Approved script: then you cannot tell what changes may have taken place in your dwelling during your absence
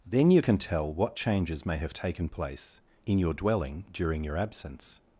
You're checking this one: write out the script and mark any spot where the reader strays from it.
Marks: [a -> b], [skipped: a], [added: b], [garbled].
then you [cannot -> can] tell what changes may have taken place in your dwelling during your absence